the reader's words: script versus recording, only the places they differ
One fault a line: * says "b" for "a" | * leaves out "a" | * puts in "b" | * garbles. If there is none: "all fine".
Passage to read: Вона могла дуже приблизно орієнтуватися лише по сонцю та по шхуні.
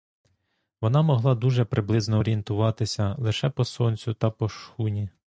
all fine